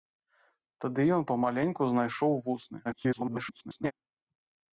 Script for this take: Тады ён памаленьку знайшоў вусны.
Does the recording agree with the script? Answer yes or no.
no